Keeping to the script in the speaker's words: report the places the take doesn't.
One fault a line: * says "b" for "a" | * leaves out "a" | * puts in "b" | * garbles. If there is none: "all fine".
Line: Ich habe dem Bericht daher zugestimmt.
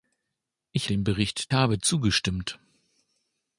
* leaves out "habe"
* says "habe" for "daher"